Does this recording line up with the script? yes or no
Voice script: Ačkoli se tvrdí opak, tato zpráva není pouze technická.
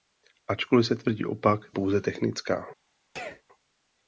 no